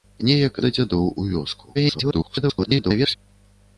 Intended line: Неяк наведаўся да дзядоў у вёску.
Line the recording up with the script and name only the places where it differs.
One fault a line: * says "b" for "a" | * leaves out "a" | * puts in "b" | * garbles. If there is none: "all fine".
* leaves out "наведаўся"
* garbles